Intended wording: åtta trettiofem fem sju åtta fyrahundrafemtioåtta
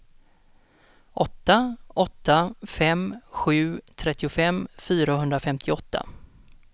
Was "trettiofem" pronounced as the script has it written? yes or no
no